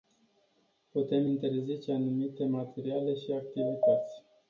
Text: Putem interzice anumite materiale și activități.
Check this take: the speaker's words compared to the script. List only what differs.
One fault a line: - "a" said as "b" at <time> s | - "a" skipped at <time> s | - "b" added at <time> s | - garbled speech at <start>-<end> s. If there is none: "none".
none